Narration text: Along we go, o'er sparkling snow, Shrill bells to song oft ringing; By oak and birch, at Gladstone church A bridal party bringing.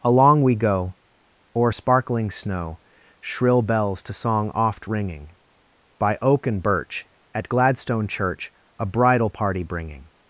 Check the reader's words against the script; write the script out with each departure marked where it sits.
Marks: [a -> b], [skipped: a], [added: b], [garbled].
Along we go, o'er sparkling snow, Shrill bells to song oft ringing; By oak and birch, at Gladstone church A bridal party bringing.